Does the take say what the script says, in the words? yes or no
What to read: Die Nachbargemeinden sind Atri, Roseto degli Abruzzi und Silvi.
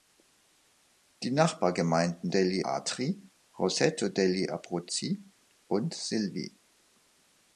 no